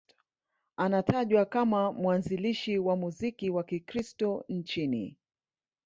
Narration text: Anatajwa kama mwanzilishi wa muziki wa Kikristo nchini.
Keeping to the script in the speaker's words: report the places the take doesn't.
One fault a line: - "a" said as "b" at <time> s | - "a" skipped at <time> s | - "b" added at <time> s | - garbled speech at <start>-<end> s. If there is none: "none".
none